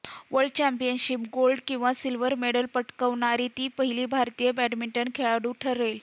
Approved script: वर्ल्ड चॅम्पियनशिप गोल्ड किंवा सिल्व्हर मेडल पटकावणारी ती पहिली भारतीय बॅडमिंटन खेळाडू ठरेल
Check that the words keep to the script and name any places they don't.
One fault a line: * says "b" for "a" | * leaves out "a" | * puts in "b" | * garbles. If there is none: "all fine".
all fine